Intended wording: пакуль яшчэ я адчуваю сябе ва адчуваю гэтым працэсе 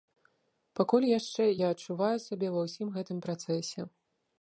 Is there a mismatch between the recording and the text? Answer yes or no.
yes